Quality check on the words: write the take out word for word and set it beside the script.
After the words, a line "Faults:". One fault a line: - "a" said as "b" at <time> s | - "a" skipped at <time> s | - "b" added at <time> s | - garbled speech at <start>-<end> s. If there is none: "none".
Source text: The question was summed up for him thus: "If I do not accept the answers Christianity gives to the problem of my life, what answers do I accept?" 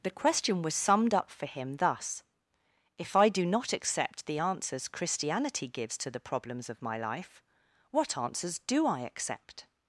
The question was summed up for him thus: "If I do not accept the answers Christianity gives to the problems of my life, what answers do I accept?"
Faults:
- "problem" said as "problems" at 6.2 s